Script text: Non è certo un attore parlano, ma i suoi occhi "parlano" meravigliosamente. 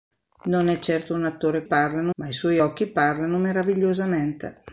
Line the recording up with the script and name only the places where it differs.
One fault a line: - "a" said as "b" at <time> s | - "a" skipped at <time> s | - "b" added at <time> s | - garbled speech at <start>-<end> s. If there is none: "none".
none